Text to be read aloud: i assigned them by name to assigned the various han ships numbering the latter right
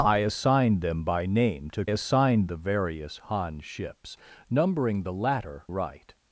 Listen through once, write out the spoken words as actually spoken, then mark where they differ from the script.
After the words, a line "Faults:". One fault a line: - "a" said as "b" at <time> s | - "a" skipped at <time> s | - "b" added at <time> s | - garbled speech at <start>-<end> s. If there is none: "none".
i assigned them by name to assigned the various han ships numbering the latter right
Faults:
none